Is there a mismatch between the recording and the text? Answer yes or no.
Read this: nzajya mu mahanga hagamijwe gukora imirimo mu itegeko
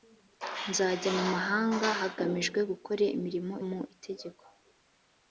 no